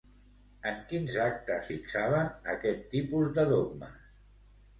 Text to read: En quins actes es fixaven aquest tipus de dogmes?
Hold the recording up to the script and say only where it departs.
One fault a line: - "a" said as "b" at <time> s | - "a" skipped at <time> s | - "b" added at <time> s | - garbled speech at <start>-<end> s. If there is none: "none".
- "es" skipped at 1.7 s